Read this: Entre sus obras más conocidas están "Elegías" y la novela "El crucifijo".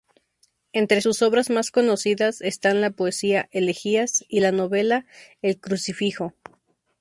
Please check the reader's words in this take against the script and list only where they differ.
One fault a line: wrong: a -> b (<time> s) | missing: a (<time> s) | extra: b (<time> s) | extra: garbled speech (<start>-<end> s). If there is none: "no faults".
extra: la poesía (2.8 s)